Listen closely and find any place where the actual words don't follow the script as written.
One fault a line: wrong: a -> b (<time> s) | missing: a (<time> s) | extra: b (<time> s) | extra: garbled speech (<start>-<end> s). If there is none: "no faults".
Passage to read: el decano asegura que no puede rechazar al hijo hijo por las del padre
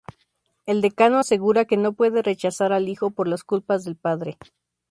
missing: hijo (3.1 s)
extra: culpas (3.4 s)